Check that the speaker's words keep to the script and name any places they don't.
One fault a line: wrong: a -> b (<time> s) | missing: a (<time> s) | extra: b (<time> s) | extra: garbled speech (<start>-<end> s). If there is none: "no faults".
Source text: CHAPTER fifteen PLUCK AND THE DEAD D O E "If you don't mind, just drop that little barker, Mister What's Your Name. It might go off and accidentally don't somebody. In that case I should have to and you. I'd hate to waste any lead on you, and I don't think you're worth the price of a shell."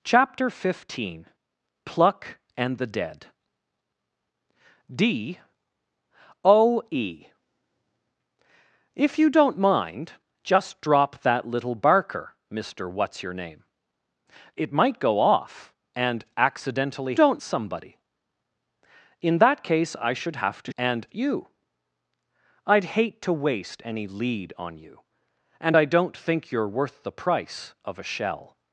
no faults